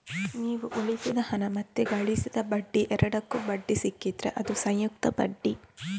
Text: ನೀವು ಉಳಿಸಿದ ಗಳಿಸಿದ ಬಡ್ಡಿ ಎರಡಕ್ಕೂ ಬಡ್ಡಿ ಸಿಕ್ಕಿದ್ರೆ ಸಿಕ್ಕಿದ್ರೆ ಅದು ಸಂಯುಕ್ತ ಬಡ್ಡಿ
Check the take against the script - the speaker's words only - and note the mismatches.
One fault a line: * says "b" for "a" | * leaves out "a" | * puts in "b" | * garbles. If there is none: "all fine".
* puts in "ಹಣ ಮತ್ತೆ"
* leaves out "ಸಿಕ್ಕಿದ್ರೆ"